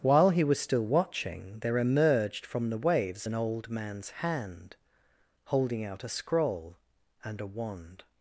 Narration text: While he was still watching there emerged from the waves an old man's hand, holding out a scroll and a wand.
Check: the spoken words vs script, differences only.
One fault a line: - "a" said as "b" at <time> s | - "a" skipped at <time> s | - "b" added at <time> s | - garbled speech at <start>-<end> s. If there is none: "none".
none